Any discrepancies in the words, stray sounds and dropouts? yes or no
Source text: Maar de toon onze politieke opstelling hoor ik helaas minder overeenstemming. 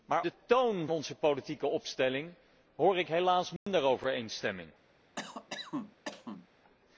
yes